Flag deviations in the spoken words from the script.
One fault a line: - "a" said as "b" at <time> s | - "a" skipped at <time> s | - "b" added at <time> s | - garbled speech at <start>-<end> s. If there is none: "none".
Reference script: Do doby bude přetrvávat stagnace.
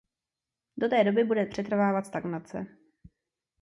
- "té" added at 0.9 s